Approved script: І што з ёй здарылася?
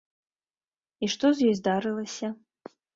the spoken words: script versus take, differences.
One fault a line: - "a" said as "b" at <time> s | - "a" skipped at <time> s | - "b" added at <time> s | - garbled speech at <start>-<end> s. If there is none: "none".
none